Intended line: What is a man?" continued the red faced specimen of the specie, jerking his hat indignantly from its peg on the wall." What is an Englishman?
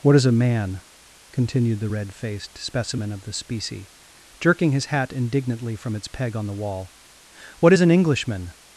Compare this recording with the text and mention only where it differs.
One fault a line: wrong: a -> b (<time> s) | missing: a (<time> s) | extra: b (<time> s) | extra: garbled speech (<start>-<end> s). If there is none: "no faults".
no faults